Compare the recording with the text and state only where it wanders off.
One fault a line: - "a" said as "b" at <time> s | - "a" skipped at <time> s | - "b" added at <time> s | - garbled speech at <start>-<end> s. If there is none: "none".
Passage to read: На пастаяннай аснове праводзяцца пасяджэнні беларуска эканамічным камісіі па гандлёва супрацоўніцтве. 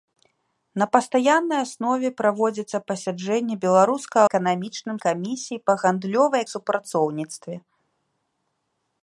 none